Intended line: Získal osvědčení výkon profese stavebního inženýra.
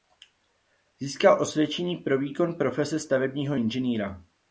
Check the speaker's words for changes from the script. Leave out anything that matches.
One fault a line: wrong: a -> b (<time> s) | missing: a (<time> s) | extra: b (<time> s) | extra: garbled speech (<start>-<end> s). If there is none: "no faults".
extra: pro (2.0 s)